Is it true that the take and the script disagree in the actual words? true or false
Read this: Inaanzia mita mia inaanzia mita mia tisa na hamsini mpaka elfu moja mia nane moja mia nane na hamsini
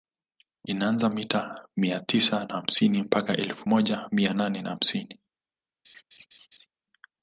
true